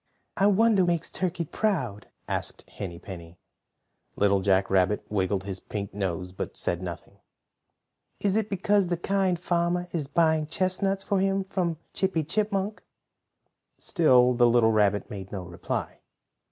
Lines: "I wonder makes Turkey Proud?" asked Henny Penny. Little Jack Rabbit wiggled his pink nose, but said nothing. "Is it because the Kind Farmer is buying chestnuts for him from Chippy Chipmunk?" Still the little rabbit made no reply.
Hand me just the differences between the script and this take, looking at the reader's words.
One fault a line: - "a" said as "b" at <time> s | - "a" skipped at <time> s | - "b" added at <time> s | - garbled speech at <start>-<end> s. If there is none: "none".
none